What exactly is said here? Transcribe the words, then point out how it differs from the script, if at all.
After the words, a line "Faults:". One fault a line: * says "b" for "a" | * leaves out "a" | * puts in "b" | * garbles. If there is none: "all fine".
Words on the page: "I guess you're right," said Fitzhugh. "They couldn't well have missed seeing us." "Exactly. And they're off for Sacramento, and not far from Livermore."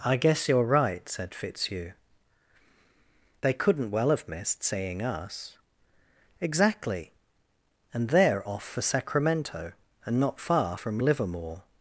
"I guess you're right," said Fitzhugh. "They couldn't well have missed seeing us." "Exactly. And they're off for Sacramento, and not far from Livermore."
Faults:
all fine